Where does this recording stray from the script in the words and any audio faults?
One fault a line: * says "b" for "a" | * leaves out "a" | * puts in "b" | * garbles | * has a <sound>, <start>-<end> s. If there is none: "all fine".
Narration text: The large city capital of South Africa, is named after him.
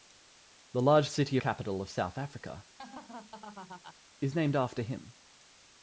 * has a laugh, 2.8-4.0 s